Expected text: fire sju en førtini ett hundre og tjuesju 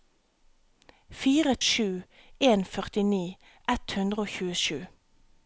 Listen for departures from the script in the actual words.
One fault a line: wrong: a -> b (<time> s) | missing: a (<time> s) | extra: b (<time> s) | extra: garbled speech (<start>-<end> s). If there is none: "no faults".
no faults